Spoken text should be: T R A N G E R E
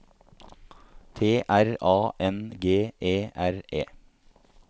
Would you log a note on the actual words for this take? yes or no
no